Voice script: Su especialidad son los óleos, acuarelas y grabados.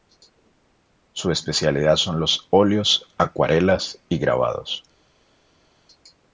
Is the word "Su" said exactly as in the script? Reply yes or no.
yes